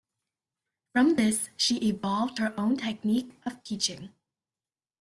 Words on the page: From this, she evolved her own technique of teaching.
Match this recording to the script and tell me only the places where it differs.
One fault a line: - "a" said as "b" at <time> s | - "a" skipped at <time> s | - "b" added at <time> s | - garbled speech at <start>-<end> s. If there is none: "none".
none